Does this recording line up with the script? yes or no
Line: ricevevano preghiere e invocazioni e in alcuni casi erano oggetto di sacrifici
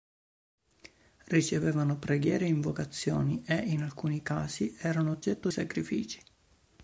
no